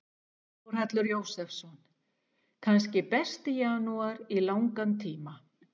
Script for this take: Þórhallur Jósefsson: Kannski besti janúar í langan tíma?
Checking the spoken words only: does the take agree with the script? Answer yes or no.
yes